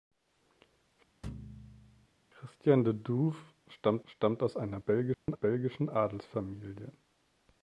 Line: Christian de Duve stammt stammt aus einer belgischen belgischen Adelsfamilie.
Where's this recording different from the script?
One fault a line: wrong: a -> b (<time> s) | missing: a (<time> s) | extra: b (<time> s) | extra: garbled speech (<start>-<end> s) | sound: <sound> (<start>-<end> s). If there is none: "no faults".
sound: thud (1.2-2.1 s)
sound: dropout (5.1-5.3 s)